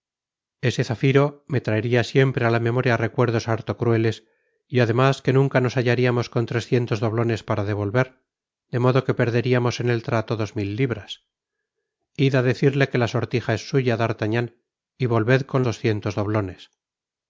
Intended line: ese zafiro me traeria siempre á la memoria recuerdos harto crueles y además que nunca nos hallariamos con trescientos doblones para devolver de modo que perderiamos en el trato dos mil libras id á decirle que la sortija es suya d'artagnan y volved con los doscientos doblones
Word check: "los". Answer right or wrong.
wrong